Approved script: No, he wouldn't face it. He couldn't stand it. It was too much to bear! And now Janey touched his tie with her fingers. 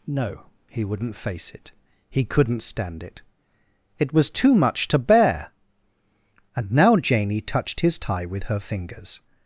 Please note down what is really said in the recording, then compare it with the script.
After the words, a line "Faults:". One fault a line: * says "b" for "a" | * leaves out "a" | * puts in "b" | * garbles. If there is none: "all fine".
No, he wouldn't face it. He couldn't stand it. It was too much to bear! And now Janey touched his tie with her fingers.
Faults:
all fine